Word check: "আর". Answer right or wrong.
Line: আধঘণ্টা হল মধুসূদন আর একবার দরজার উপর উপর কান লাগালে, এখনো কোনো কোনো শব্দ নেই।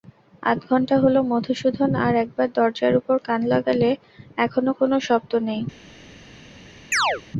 right